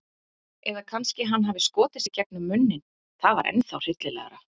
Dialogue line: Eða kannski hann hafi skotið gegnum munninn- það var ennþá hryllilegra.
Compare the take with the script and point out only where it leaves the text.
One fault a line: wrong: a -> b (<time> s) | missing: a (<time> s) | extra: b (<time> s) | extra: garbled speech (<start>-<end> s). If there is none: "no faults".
extra: sig (2.0 s)